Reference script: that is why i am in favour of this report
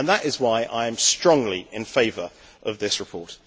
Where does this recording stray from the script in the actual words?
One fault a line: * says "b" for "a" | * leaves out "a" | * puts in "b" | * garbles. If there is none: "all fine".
* puts in "strongly"